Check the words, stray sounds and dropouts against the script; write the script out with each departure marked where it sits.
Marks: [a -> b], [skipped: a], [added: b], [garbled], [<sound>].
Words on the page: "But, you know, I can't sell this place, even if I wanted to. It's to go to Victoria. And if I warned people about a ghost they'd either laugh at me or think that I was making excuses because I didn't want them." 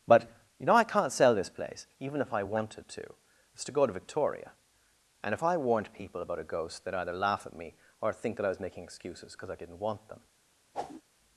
"But, you know, I can't sell this place, even if I wanted to. It's to go to Victoria. And if I warned people about a ghost they'd either laugh at me or think that I was making excuses because I didn't want them." [whoosh]